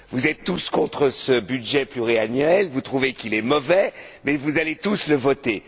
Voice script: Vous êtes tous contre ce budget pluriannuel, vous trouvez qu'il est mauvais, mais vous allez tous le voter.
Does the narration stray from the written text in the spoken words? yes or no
no